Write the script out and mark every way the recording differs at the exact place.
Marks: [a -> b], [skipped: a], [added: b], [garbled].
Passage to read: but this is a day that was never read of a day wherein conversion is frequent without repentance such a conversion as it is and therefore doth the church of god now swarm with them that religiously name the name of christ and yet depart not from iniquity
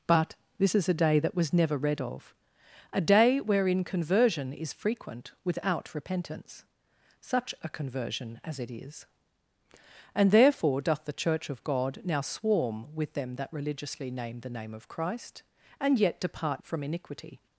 but this is a day that was never read of a day wherein conversion is frequent without repentance such a conversion as it is and therefore doth the church of god now swarm with them that religiously name the name of christ and yet depart [skipped: not] from iniquity